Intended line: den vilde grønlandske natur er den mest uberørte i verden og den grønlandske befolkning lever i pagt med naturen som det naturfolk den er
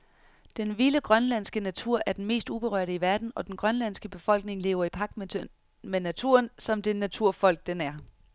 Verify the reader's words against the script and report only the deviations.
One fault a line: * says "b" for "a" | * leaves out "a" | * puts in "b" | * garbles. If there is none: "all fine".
all fine